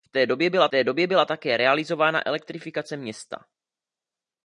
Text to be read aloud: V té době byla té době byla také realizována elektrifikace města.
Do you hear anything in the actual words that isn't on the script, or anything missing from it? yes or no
no